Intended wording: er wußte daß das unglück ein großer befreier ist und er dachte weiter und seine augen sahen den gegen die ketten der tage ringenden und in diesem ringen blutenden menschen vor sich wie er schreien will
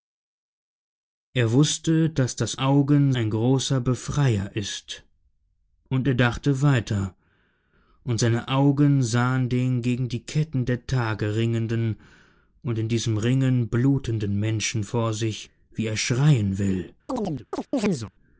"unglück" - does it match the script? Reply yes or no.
no